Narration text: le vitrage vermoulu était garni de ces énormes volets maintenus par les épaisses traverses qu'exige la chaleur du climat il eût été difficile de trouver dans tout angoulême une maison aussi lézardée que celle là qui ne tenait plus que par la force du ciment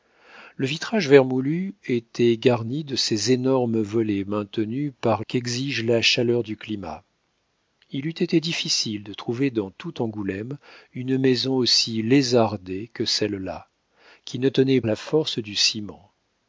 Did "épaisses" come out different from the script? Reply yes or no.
yes